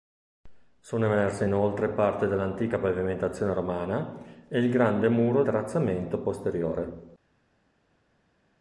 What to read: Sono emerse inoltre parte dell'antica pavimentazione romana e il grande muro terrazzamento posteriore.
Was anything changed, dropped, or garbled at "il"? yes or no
no